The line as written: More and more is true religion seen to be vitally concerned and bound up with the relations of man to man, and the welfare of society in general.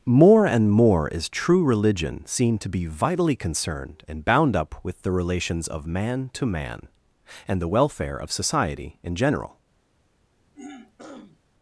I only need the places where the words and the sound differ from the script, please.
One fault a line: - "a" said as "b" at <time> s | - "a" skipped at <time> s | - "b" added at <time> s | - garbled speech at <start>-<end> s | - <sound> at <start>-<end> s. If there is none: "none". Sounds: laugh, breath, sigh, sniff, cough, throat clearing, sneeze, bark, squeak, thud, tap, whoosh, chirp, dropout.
- throat clearing at 10.5-11.4 s